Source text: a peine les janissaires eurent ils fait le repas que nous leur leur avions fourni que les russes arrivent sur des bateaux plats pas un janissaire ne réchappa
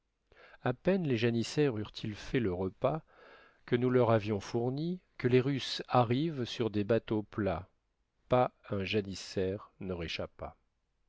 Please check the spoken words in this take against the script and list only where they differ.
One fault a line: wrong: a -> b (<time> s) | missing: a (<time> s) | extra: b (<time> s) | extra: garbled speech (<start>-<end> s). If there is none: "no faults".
missing: leur (4.1 s)